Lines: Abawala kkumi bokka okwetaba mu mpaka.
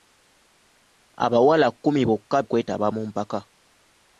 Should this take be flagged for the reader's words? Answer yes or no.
no